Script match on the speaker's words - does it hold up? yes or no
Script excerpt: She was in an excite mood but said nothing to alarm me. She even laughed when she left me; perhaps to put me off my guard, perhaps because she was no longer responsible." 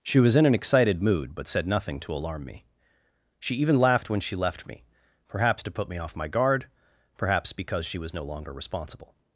no